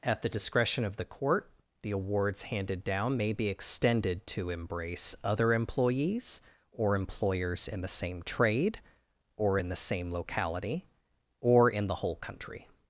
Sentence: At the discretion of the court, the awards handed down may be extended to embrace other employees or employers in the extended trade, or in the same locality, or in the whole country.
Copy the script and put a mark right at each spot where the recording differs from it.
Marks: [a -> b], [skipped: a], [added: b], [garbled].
At the discretion of the court, the awards handed down may be extended to embrace other employees or employers in the [extended -> same] trade, or in the same locality, or in the whole country.